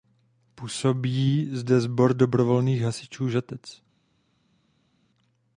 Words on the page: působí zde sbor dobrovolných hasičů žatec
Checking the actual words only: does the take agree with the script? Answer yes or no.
yes